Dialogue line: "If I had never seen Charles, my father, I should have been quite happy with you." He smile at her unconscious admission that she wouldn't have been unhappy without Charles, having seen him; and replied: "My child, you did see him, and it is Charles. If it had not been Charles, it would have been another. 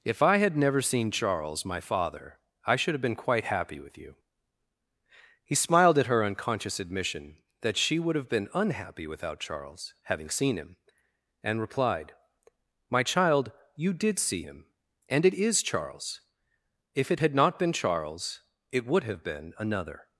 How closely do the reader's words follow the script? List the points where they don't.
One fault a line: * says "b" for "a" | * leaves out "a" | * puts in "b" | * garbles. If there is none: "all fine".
* says "smiled" for "smile"
* says "would" for "wouldn't"